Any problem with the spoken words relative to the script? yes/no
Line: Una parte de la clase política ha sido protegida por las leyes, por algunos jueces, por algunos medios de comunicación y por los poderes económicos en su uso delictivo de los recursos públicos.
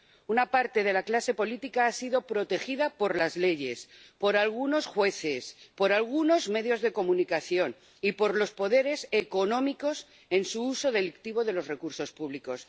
no